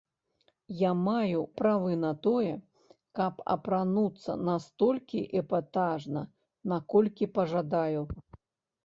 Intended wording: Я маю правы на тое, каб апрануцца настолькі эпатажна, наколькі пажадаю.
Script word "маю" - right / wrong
right